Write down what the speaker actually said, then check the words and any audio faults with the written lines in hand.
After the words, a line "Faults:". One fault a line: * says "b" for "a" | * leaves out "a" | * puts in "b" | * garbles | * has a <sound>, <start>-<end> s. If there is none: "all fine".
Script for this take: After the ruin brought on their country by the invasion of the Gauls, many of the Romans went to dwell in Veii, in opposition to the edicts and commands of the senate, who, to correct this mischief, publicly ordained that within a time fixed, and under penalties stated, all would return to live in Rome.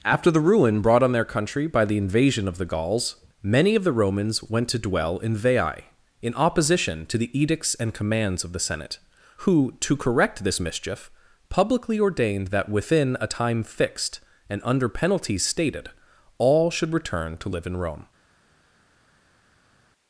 After the ruin brought on their country by the invasion of the Gauls, many of the Romans went to dwell in Veii, in opposition to the edicts and commands of the senate, who, to correct this mischief, publicly ordained that within a time fixed, and under penalties stated, all should return to live in Rome.
Faults:
* says "should" for "would"